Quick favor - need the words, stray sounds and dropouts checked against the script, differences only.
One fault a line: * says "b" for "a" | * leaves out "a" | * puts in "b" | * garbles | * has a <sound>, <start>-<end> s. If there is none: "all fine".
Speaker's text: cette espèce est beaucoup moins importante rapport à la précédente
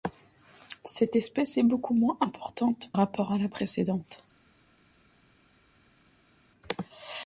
all fine